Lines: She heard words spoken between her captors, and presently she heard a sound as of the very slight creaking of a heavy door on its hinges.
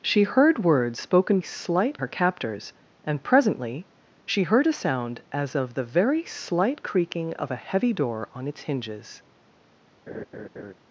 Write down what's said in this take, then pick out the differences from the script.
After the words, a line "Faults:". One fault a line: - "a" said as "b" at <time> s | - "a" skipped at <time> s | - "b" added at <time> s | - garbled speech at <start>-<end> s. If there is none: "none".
She heard words spoken slight her captors, and presently she heard a sound as of the very slight creaking of a heavy door on its hinges.
Faults:
- "between" said as "slight" at 1.4 s